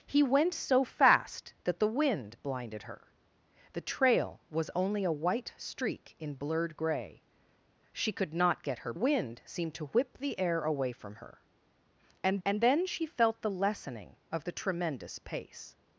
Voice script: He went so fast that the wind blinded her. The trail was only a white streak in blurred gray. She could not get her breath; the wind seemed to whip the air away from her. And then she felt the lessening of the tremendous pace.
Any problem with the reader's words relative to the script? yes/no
yes